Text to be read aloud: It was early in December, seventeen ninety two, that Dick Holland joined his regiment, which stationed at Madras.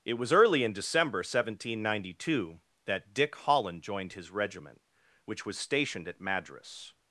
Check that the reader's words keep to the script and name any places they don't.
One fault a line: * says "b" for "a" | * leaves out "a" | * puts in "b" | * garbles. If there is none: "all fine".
* puts in "was"